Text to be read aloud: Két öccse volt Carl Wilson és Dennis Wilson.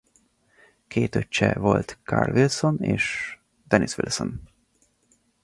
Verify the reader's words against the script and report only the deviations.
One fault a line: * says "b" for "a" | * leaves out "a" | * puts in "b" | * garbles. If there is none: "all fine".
all fine